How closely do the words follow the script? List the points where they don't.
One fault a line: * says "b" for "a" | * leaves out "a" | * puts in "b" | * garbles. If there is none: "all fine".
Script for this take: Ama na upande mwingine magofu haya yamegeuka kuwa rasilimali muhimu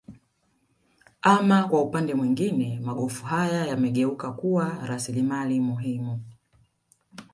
* says "kwa" for "na"